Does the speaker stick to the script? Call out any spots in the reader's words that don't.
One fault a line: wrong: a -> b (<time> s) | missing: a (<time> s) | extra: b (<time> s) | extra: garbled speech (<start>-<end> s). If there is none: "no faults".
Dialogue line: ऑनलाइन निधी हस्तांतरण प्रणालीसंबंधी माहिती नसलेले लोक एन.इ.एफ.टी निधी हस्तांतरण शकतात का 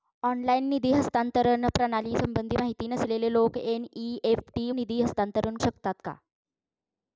no faults